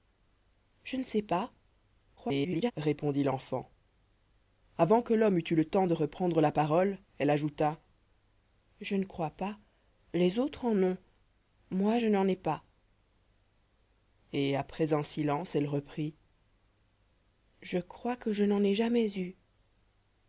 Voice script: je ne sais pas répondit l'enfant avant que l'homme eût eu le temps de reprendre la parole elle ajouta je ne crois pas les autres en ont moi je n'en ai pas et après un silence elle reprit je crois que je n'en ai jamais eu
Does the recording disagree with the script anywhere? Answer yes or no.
yes